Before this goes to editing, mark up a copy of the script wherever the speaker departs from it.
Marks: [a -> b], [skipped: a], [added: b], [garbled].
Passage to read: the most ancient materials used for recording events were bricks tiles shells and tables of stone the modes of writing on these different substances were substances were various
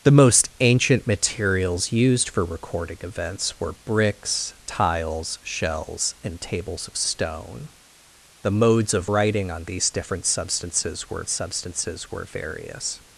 the most ancient materials used for recording events were bricks tiles shells and tables of stone the modes of writing on these different substances were substances were various